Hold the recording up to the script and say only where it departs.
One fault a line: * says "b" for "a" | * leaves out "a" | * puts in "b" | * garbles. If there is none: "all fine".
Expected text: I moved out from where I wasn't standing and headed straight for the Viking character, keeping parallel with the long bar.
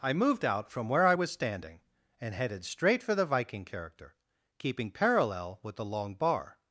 * says "was" for "wasn't"